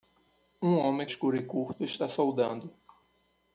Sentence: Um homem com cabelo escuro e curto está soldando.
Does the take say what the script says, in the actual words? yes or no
no